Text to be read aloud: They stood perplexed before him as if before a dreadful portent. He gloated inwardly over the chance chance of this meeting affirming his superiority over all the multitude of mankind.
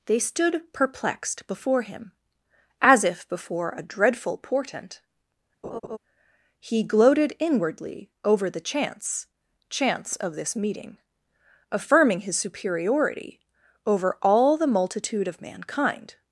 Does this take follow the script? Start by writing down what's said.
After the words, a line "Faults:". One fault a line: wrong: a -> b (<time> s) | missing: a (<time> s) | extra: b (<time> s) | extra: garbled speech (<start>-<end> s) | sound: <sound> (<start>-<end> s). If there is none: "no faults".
They stood perplexed before him as if before a dreadful portent. He gloated inwardly over the chance chance of this meeting affirming his superiority over all the multitude of mankind.
Faults:
sound: laugh (5.6-6.0 s)